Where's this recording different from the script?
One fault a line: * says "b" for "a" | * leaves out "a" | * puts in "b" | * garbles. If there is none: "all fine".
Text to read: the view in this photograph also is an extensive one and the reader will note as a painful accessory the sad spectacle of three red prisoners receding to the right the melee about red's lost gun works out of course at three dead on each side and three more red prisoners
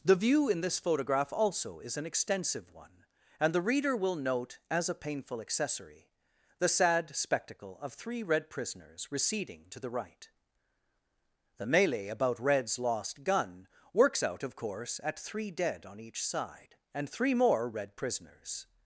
all fine